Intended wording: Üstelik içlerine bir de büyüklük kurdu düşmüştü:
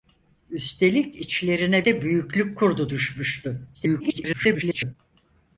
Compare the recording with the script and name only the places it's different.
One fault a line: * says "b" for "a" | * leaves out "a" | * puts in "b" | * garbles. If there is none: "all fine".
* leaves out "bir"
* garbles